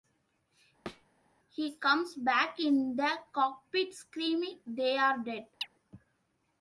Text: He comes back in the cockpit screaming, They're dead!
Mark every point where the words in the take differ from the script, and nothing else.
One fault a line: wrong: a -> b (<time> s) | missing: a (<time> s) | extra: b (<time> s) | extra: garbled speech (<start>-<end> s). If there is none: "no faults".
no faults